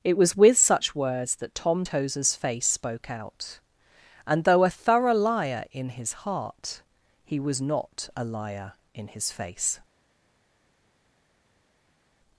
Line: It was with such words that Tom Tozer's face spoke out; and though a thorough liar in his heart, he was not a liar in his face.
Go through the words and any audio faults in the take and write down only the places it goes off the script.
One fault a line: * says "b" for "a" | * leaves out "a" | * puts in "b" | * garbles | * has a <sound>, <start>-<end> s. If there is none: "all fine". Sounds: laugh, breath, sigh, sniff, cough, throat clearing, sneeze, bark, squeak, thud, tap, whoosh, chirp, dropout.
all fine